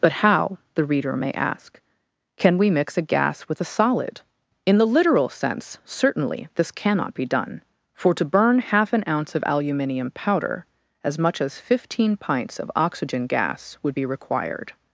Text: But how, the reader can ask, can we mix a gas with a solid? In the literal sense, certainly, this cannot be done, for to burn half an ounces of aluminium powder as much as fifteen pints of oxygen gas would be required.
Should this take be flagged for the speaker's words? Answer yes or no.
yes